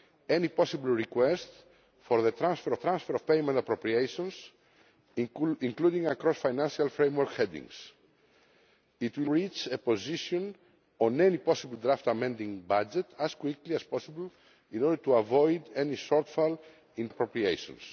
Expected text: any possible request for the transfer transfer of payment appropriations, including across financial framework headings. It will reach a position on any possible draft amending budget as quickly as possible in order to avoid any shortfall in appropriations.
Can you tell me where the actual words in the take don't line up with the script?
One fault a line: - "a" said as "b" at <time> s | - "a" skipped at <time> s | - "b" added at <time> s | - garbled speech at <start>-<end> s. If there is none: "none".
none